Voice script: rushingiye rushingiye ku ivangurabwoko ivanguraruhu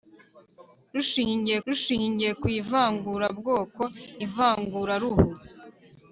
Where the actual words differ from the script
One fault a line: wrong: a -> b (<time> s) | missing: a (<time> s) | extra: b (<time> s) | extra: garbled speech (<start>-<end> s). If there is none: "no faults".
no faults